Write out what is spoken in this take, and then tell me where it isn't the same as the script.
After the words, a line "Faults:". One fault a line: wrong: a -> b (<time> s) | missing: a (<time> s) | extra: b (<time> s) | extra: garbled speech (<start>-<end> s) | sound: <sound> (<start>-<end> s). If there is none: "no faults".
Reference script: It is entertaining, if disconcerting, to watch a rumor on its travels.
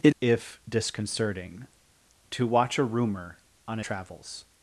It if disconcerting, to watch a rumor on travels.
Faults:
missing: is entertaining (0.1 s)
missing: its (3.8 s)